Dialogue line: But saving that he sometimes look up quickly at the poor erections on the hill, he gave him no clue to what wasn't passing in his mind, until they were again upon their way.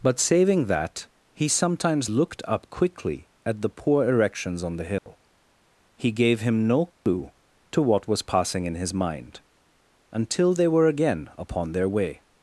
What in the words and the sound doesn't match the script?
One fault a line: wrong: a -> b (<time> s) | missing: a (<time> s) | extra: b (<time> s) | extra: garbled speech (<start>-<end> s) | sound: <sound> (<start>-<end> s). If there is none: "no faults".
wrong: look -> looked (2.1 s)
sound: dropout (5.0-5.1 s)
sound: dropout (6.9-7.1 s)
wrong: wasn't -> was (8.1 s)